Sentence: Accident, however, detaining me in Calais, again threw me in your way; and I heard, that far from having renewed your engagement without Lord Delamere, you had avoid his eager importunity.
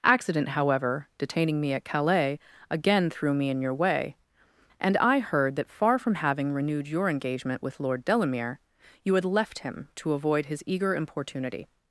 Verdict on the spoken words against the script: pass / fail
fail